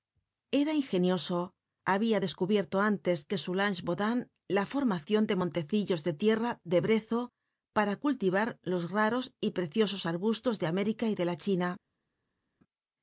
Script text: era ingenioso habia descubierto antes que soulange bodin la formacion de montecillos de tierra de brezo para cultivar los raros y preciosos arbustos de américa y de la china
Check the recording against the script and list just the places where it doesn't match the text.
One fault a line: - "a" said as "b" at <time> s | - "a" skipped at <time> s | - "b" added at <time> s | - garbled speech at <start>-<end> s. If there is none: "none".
none